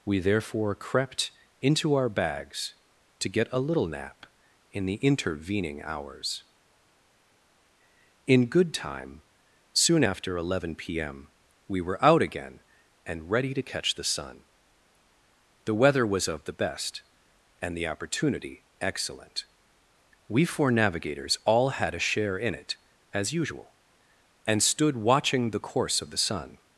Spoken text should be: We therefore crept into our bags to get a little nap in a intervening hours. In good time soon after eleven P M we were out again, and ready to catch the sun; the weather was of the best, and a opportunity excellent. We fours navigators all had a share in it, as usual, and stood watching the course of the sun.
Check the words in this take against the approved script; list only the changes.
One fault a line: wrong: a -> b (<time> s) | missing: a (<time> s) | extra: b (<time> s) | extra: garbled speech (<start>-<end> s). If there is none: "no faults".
wrong: a -> the (4.8 s)
wrong: a -> the (17.8 s)
wrong: fours -> four (20.4 s)